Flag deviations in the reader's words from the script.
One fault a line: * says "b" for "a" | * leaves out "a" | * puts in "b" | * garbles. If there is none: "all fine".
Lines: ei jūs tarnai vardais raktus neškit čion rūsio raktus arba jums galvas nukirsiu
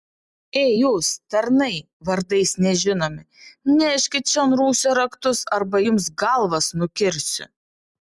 * says "nežinomi" for "raktus"